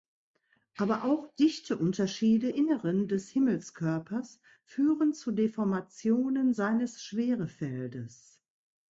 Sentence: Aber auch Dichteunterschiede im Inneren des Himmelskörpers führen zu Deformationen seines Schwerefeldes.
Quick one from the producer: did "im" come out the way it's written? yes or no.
no